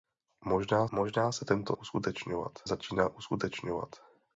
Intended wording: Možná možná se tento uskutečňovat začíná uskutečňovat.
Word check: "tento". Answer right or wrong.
right